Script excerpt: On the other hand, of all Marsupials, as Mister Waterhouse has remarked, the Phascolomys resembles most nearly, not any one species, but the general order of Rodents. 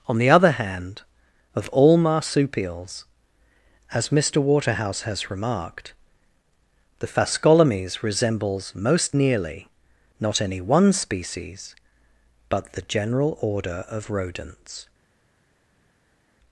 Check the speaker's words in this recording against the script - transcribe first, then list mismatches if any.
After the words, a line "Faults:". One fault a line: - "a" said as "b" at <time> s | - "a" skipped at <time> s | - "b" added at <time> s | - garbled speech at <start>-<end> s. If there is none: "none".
On the other hand, of all Marsupials, as Mister Waterhouse has remarked, the Phascolomys resembles most nearly, not any one species, but the general order of Rodents.
Faults:
none